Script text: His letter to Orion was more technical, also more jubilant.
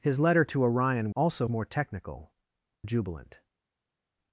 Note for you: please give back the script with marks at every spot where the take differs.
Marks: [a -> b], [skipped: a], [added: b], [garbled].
His letter to Orion [was -> also] more technical, [skipped: also more] jubilant.